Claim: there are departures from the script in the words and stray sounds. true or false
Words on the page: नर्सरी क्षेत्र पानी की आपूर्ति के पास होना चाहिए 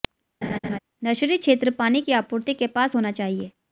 true